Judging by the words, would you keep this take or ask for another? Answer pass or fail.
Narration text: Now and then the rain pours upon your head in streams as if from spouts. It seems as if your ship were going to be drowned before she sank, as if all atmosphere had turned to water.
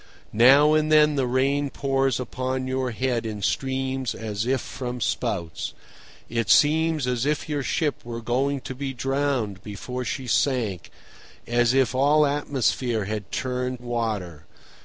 fail